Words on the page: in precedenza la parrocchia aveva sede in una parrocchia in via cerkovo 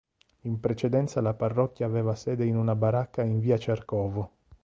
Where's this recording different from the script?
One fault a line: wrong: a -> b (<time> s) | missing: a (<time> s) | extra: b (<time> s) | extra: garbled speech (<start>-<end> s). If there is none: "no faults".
wrong: parrocchia -> baracca (2.7 s)